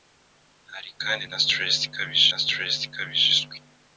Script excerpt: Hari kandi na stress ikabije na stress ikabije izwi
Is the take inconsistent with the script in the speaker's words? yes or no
no